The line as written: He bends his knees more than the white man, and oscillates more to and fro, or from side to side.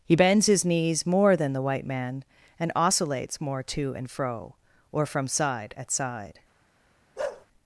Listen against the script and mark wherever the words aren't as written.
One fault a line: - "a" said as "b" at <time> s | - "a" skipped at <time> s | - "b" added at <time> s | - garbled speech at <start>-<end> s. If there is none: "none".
- "to" said as "at" at 5.8 s